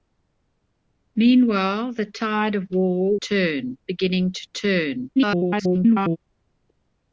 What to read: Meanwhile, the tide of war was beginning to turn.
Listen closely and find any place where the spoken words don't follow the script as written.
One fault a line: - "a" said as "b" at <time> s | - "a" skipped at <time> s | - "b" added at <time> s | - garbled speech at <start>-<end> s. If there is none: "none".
- "was" said as "turn" at 3.2 s
- garbled speech at 5.1-6.2 s